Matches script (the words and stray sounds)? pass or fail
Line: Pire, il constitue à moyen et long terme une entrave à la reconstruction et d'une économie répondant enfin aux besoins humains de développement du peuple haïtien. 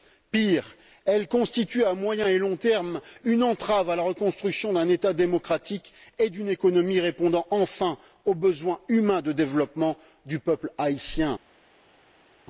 fail